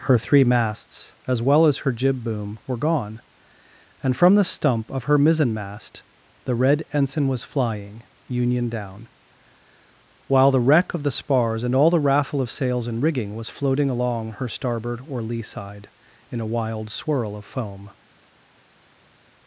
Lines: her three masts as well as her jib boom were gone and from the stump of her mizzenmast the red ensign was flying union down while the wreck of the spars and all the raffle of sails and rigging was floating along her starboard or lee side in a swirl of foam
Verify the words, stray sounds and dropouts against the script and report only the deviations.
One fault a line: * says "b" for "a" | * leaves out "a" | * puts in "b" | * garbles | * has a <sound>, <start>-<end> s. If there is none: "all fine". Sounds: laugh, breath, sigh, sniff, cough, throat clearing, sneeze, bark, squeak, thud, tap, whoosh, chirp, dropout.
* puts in "wild"